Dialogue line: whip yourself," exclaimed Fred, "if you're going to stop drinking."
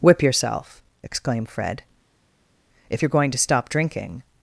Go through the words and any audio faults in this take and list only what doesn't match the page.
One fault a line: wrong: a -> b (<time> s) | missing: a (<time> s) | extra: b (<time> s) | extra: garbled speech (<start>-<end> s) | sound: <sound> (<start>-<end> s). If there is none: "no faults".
no faults